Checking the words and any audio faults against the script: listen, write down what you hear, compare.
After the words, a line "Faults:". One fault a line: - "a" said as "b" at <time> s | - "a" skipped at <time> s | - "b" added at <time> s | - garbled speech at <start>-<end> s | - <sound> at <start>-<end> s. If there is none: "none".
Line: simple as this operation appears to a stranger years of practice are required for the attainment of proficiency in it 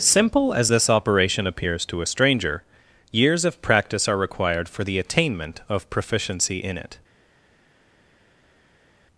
simple as this operation appears to a stranger years of practice are required for the attainment of proficiency in it
Faults:
none